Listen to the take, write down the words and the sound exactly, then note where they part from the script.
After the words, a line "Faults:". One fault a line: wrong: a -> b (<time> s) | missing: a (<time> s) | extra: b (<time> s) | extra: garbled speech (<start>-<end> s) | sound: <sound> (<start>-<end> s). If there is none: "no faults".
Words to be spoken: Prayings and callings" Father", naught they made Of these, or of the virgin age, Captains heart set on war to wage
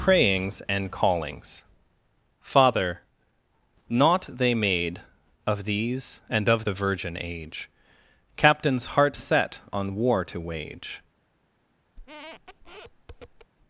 Prayings and callings" Father", naught they made Of these, and of the virgin age, Captains heart set on war to wage
Faults:
wrong: or -> and (6.3 s)
sound: squeak (12.0-13.5 s)